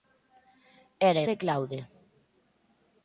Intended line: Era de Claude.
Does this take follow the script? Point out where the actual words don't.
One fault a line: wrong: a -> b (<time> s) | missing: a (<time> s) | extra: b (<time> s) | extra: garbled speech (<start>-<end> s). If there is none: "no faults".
no faults